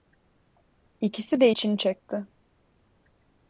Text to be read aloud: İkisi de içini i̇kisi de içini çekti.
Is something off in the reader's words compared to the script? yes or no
yes